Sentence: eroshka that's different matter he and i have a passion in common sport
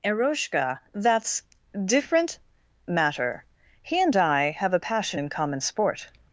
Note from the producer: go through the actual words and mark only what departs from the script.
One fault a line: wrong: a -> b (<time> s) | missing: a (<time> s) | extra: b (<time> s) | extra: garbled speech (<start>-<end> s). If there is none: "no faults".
no faults